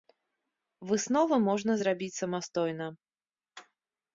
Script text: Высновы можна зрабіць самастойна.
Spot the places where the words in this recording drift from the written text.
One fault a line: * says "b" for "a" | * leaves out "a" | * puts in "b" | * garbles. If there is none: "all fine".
all fine